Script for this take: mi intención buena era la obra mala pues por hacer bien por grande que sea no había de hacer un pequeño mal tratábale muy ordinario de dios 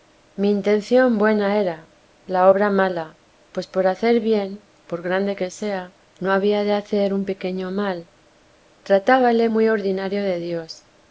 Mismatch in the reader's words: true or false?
false